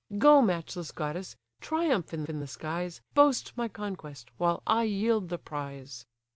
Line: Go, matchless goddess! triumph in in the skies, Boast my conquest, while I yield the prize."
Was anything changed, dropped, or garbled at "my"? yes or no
no